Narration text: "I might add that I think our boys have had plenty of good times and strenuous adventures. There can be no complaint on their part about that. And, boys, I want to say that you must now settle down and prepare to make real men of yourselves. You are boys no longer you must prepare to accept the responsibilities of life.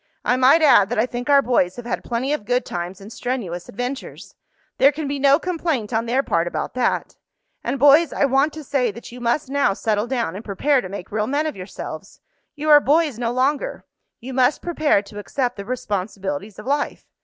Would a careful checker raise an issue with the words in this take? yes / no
no